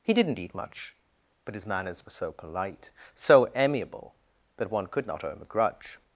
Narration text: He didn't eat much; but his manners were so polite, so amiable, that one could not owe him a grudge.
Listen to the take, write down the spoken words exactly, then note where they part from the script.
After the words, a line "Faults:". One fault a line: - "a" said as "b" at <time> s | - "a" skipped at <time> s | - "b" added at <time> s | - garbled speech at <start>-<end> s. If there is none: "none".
He didn't eat much; but his manners were so polite, so amiable, that one could not owe him a grudge.
Faults:
none